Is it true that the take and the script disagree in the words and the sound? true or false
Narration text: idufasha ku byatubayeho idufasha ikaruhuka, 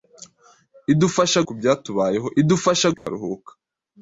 true